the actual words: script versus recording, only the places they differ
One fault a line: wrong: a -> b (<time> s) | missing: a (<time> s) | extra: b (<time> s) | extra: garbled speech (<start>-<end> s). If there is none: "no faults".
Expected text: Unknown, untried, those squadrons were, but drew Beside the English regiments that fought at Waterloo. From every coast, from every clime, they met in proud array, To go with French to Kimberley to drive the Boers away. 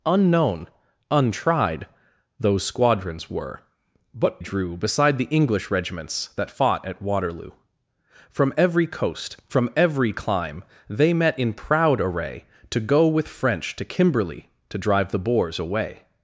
no faults